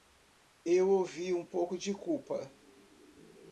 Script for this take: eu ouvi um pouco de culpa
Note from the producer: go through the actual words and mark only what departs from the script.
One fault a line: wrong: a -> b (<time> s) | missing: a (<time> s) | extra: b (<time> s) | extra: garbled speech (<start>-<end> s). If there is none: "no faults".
no faults